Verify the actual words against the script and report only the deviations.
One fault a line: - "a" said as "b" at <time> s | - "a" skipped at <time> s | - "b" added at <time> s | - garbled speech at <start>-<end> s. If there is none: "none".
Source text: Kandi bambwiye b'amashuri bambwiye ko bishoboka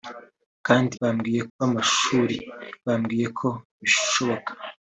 none